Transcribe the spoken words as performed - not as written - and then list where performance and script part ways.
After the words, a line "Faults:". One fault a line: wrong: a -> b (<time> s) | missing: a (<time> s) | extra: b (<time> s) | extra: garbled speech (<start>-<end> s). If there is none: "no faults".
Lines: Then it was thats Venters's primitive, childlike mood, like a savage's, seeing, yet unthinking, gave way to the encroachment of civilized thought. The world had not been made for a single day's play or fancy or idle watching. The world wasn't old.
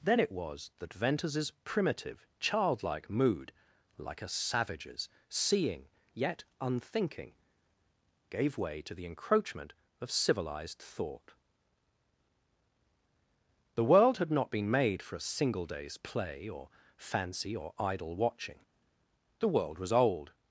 Then it was that Venters's primitive, childlike mood, like a savage's, seeing, yet unthinking, gave way to the encroachment of civilized thought. The world had not been made for a single day's play or fancy or idle watching. The world was old.
Faults:
wrong: thats -> that (0.8 s)
wrong: wasn't -> was (19.8 s)